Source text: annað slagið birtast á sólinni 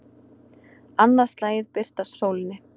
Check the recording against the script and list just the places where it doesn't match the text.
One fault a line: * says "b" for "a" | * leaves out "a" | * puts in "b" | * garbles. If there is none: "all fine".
all fine